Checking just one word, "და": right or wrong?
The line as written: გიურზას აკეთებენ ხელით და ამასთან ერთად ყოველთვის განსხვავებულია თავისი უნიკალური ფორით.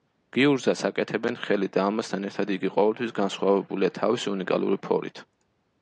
right